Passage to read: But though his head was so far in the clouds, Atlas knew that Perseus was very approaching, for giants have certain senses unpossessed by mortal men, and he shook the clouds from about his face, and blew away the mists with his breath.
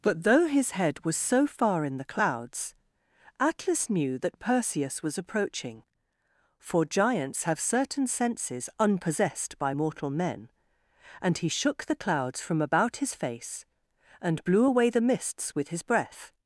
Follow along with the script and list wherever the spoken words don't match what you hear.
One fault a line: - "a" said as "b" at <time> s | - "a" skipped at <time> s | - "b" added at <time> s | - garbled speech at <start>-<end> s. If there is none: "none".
- "very" skipped at 5.2 s